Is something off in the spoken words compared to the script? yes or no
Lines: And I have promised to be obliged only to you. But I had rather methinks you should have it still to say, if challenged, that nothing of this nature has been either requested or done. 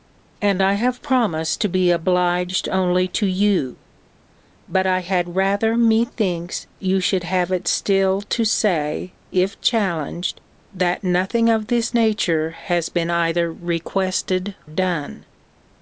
yes